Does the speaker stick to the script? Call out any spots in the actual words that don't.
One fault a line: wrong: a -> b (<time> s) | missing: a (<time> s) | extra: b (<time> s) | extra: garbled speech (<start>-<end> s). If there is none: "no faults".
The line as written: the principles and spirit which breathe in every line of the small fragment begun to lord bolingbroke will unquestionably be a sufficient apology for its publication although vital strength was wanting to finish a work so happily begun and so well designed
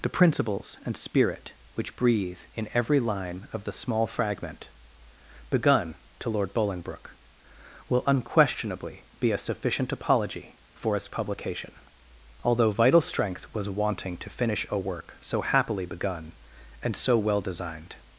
no faults